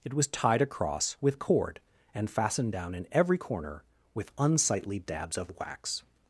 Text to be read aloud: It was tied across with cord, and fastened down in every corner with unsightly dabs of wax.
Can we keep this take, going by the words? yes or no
yes